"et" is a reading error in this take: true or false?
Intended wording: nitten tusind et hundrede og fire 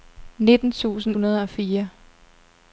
true